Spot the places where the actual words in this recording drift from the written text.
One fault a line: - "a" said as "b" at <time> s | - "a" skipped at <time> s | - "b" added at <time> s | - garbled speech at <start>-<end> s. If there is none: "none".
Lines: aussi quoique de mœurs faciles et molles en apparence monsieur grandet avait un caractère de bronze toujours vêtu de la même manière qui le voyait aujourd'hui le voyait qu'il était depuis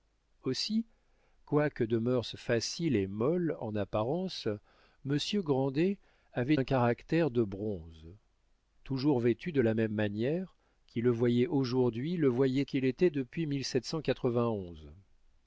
none